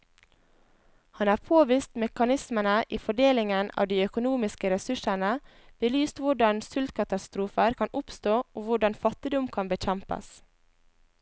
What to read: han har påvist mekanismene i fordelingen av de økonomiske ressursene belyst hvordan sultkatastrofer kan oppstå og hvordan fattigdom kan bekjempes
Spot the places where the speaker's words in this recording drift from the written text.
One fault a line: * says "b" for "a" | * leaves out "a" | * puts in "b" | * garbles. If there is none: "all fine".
all fine